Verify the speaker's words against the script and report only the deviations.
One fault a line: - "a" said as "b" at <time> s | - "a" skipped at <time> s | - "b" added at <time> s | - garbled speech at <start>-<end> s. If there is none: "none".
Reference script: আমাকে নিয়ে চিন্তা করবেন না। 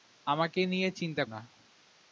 - "করবেন" skipped at 1.2 s